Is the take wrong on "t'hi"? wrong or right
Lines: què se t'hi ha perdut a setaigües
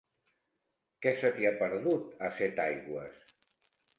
right